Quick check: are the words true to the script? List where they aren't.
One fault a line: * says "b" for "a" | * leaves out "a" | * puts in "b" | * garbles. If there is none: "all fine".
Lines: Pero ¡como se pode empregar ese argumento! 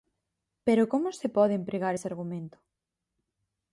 all fine